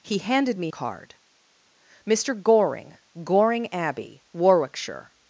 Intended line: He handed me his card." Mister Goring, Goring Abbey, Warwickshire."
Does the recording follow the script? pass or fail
fail